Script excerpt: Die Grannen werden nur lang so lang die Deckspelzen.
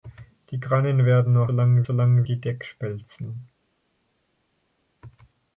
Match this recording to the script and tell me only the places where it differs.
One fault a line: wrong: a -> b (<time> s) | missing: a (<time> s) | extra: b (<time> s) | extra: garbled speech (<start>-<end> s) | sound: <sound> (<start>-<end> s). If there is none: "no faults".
no faults